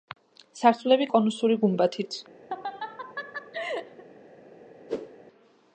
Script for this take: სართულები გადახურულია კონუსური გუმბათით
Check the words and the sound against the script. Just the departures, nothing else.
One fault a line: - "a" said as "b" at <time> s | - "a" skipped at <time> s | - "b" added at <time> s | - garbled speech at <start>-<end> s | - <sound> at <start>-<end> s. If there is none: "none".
- "გადახურულია" skipped at 1.1 s
- laugh at 2.5-4.0 s
- whoosh at 4.9-5.2 s